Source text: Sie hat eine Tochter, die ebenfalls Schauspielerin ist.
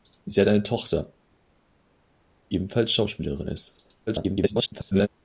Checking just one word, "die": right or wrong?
wrong